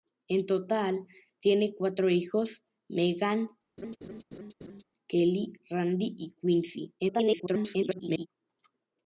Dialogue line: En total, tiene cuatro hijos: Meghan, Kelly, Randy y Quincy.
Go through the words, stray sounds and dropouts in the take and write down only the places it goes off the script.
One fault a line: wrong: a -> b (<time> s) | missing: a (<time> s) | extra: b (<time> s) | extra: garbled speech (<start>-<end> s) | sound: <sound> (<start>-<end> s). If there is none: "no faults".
sound: laugh (3.8-4.8 s)
extra: garbled speech (7.0-8.3 s)